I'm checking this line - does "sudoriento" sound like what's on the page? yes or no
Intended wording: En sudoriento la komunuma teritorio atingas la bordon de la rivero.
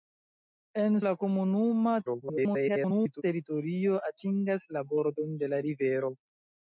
no